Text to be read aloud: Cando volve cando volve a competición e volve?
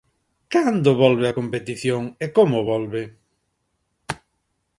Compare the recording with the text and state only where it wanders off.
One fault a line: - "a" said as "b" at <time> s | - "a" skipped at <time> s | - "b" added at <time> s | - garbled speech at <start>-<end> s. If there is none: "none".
- "cando volve" skipped at 1.3 s
- "como" added at 2.4 s